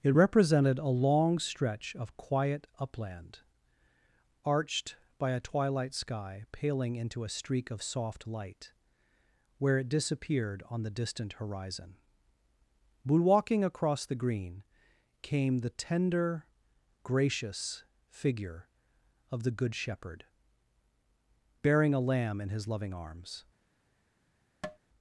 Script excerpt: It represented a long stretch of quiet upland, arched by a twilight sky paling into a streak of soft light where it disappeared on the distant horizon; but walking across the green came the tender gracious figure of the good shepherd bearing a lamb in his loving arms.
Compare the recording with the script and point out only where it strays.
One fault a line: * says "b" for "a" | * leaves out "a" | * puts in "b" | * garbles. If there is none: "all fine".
all fine